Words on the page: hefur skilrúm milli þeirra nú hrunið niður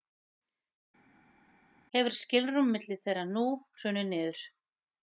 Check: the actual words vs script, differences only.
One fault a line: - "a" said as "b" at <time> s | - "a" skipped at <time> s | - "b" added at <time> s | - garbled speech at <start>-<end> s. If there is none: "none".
none